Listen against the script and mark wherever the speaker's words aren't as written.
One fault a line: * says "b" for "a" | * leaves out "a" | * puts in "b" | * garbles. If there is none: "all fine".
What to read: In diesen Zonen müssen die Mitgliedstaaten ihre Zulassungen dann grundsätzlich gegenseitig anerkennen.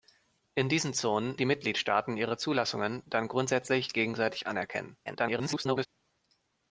* leaves out "müssen"
* garbles